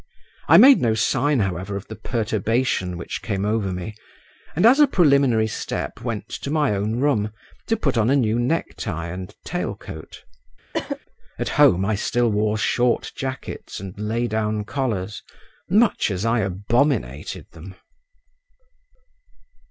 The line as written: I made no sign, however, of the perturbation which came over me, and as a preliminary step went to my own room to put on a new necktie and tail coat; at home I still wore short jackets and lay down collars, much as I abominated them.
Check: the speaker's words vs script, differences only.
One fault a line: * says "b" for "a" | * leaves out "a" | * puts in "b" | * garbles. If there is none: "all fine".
all fine